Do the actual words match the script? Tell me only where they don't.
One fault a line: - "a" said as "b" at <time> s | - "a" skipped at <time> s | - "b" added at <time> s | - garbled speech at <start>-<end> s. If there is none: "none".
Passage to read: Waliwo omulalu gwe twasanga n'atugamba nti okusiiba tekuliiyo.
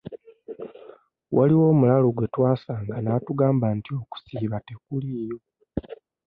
none